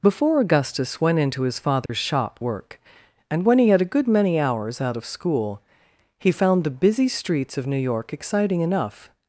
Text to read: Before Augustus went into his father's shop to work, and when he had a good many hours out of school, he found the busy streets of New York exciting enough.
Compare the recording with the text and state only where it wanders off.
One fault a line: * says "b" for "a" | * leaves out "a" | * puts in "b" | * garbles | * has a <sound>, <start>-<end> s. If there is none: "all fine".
* has a dropout, 1.9-1.9 s
* leaves out "to"